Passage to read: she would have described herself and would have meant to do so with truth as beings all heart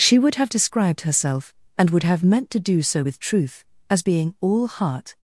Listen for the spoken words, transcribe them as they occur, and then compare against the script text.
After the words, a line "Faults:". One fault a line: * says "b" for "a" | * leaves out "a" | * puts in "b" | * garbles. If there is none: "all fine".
she would have described herself and would have meant to do so with truth as being all heart
Faults:
* says "being" for "beings"